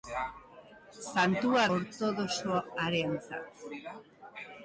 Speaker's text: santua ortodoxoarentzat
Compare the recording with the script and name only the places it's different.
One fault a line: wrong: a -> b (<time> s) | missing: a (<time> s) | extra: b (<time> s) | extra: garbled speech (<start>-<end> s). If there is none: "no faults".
no faults